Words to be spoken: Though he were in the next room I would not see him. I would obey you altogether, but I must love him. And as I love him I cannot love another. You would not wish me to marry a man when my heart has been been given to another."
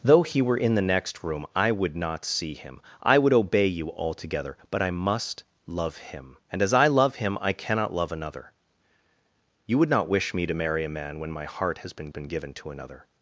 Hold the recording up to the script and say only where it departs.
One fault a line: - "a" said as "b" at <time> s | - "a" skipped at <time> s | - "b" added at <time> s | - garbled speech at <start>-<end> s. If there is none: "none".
none